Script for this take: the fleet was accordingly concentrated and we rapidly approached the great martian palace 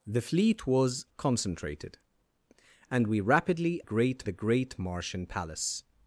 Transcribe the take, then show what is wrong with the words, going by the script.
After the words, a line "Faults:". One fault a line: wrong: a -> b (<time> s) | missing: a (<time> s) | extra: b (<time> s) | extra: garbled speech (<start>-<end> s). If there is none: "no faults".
the fleet was concentrated and we rapidly great the great martian palace
Faults:
missing: accordingly (1.1 s)
wrong: approached -> great (3.8 s)